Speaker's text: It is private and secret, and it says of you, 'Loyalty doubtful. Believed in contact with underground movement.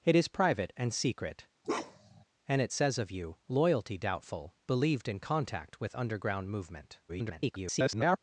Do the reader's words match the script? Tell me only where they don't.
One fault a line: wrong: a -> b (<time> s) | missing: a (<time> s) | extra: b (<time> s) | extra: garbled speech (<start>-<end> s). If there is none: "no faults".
extra: garbled speech (7.1-8.2 s)